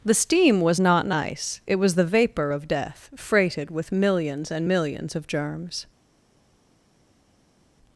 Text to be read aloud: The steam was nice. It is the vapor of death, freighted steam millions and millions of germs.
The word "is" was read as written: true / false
false